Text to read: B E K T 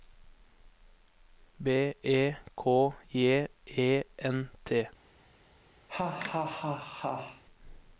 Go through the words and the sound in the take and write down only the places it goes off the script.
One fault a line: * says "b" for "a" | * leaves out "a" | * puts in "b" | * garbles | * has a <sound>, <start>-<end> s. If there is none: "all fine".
* puts in "J E N"
* has a laugh, 5.9-7.4 s